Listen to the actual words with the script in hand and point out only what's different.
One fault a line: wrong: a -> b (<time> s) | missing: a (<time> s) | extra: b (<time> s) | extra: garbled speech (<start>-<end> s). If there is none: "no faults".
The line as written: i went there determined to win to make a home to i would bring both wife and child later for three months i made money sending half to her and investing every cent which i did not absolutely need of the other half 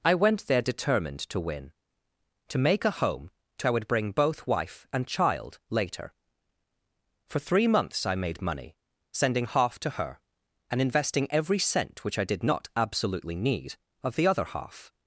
no faults